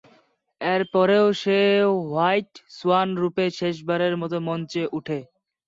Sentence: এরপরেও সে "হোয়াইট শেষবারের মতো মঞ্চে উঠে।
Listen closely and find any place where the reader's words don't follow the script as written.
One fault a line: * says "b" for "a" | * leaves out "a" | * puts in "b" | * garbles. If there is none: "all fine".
* puts in "সোয়ান রূপে"